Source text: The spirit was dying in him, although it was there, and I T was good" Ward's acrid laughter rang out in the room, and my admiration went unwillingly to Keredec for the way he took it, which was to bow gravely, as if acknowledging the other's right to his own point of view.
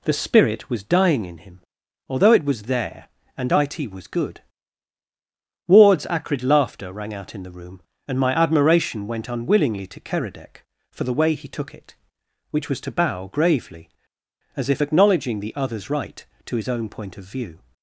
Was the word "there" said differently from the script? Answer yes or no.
no